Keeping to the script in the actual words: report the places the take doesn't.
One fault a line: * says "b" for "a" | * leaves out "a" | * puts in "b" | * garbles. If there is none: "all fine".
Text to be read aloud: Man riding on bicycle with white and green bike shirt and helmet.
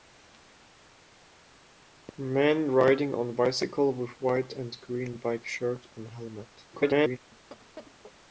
* garbles